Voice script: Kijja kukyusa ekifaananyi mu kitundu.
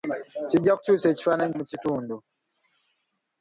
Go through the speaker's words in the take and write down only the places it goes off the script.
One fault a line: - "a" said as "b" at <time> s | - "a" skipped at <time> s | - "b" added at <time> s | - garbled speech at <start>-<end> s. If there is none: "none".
none